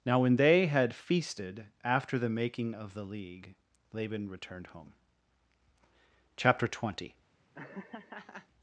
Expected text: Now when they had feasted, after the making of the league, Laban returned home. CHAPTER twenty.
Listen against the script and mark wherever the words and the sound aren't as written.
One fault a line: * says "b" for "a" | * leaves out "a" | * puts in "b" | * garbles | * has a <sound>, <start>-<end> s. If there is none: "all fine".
* has a laugh, 7.5-8.5 s